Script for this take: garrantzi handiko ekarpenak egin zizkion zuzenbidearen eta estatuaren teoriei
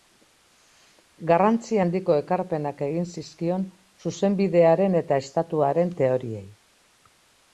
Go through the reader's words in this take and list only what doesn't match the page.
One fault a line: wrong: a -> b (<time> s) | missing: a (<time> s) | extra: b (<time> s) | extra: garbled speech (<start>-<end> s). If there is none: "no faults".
no faults